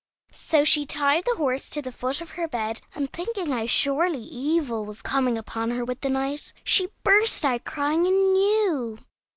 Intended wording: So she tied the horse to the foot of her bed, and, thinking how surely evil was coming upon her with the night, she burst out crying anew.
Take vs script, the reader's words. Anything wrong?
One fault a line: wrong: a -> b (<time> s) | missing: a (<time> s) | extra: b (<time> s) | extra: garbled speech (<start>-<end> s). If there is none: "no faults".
no faults